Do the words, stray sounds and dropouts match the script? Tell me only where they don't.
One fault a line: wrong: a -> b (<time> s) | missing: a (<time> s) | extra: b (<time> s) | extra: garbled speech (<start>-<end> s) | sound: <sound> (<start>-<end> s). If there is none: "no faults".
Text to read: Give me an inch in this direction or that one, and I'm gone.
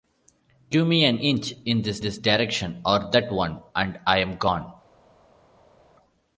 extra: this (2.0 s)